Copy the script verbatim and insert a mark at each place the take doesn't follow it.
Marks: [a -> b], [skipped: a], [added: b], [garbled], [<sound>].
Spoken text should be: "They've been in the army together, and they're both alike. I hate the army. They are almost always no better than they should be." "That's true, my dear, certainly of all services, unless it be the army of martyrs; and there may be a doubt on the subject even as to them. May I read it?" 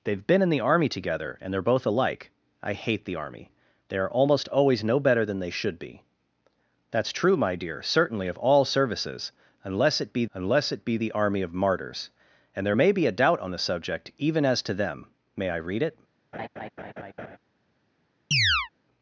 "They've been in the army together, and they're both alike. I hate the army. They are almost always no better than they should be." "That's true, my dear, certainly of all services, unless it be [added: unless it be] the army of martyrs; and there may be a doubt on the subject even as to them. May I read it?" [laugh] [chirp]